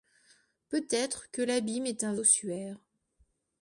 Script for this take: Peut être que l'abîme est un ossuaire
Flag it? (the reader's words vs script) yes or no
no